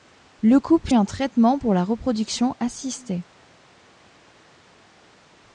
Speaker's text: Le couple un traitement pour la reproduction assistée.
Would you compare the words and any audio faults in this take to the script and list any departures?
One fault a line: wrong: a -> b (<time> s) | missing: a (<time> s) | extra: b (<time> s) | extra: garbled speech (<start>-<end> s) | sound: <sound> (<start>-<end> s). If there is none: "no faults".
no faults